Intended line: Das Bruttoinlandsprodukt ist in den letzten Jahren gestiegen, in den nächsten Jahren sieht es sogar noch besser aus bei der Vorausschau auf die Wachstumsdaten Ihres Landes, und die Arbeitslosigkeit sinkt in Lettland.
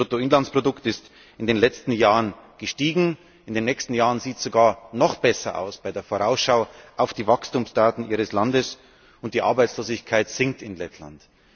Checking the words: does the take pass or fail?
pass